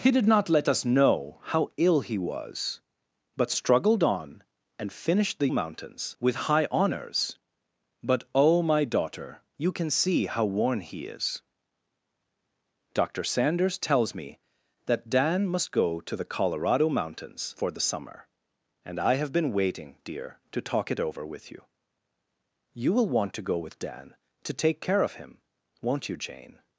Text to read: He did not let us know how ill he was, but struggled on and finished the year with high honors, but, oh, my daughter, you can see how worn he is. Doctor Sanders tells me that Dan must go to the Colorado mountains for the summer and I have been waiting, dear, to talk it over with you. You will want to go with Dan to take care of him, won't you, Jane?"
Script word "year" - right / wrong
wrong